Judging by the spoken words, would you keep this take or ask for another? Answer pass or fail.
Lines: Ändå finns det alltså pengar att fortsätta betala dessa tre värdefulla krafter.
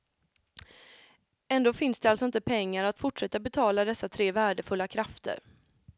fail